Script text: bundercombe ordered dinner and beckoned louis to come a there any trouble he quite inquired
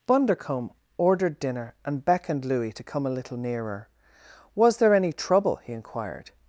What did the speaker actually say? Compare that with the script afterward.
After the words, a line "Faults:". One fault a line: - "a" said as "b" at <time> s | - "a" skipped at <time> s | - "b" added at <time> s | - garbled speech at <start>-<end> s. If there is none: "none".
bundercombe ordered dinner and beckoned louis to come a little nearer was there any trouble he inquired
Faults:
- "little nearer was" added at 3.1 s
- "quite" skipped at 5.7 s